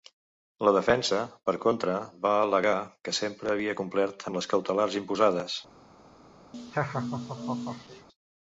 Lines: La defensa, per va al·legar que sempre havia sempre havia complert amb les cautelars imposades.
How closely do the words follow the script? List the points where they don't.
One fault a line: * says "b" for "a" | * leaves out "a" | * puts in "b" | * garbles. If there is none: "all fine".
* puts in "contra"
* leaves out "sempre havia"